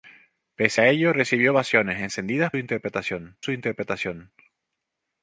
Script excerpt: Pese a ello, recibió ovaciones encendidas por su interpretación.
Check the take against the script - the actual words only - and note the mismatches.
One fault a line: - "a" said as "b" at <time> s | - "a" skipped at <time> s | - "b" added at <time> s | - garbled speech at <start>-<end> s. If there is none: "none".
- "por" said as "interpretación" at 2.6 s